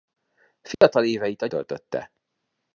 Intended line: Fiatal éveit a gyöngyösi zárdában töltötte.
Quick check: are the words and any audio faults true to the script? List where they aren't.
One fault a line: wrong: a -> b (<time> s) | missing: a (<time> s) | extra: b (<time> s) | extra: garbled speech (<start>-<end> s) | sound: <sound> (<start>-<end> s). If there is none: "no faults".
sound: dropout (0.7-0.8 s)
missing: gyöngyösi zárdában (1.5 s)